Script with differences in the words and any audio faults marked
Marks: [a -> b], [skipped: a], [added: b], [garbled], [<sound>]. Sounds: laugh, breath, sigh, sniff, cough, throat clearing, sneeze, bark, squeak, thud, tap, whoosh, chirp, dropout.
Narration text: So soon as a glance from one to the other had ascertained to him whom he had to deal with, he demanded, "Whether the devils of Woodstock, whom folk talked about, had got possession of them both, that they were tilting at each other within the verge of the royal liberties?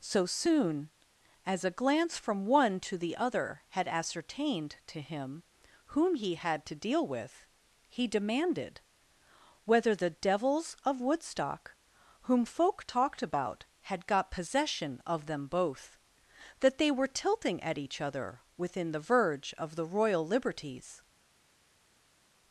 So soon as a glance from one to the other had ascertained to him whom he had to deal with, he demanded, "Whether the devils of Woodstock, whom folk talked about, had got possession of them both, that they were tilting at each other within the verge of the royal liberties?